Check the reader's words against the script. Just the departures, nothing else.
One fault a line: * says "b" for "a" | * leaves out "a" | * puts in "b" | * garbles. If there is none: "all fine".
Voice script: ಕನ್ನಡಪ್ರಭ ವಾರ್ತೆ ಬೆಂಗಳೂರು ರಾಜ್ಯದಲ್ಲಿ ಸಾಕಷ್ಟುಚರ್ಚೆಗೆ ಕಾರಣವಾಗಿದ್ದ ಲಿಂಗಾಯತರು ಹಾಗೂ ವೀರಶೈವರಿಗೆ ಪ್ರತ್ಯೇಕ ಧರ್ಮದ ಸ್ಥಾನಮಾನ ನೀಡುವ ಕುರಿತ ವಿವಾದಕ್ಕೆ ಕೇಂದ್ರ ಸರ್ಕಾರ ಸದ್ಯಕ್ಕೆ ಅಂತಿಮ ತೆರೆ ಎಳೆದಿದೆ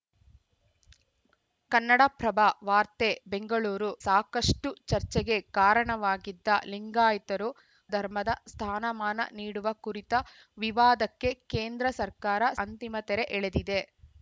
* leaves out "ರಾಜ್ಯದಲ್ಲಿ"
* leaves out "ಹಾಗೂ ವೀರಶೈವರಿಗೆ ಪ್ರತ್ಯೇಕ"
* leaves out "ಸದ್ಯಕ್ಕೆ"